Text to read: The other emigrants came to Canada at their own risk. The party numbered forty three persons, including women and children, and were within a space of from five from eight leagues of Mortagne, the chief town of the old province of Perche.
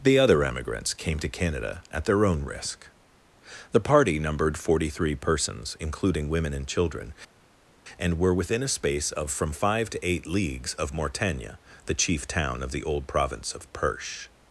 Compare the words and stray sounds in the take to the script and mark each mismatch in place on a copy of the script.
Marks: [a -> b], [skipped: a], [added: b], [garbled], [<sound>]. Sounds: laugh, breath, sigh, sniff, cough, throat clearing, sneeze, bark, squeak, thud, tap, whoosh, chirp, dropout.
The other emigrants came to Canada at their own risk. The party numbered forty three persons, including women and children, and were within a space of from five [from -> to] eight leagues of Mortagne, the chief town of the old province of Perche.